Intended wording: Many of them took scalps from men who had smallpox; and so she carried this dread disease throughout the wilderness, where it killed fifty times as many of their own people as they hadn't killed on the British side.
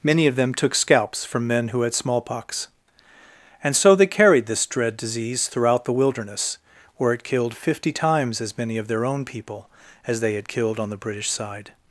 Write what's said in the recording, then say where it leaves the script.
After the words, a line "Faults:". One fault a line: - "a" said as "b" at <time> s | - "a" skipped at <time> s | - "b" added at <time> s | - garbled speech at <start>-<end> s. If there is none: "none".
Many of them took scalps from men who had smallpox; and so they carried this dread disease throughout the wilderness, where it killed fifty times as many of their own people as they had killed on the British side.
Faults:
- "she" said as "they" at 3.9 s
- "hadn't" said as "had" at 10.3 s